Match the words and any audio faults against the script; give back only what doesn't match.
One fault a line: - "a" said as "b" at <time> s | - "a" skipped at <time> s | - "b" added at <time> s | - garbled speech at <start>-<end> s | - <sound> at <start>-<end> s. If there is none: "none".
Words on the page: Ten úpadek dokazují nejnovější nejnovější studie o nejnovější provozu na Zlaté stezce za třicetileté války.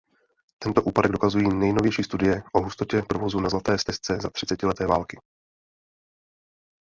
- "Ten" said as "Tento" at 0.6 s
- "nejnovější" skipped at 2.0 s
- "nejnovější" said as "hustotě" at 2.6 s